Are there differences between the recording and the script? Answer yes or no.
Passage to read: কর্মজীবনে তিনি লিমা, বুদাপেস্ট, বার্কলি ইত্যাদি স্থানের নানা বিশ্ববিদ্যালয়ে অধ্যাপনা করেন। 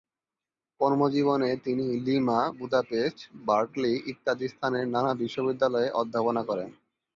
no